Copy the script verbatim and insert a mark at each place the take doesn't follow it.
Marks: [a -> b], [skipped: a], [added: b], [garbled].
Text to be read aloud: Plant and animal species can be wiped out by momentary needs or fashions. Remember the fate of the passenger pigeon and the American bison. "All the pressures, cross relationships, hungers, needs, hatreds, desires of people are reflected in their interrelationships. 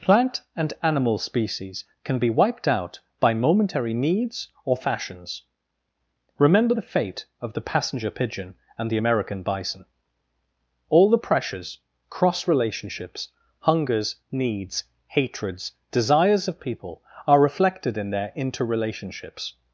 Plant and animal species can be wiped out by momentary needs or fashions. Remember the fate of the passenger pigeon and the American bison. "All the pressures, cross relationships, hungers, needs, hatreds, desires of people are reflected in their interrelationships.